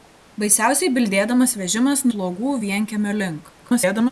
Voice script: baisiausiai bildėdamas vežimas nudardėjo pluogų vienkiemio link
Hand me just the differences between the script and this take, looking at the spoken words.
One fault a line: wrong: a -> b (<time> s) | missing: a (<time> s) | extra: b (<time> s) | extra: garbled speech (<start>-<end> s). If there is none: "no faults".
missing: nudardėjo (2.0 s)
extra: garbled speech (3.6-4.1 s)